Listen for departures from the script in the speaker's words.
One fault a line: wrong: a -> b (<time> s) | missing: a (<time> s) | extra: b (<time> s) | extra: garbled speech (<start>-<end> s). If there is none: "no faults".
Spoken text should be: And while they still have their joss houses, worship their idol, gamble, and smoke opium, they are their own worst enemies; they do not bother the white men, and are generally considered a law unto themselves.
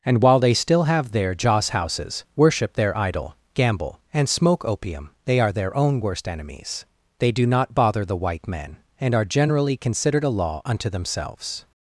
no faults